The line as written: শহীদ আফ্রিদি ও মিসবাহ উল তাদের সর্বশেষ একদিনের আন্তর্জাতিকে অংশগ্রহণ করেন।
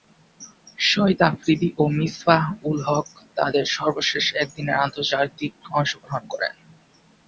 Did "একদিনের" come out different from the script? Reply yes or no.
no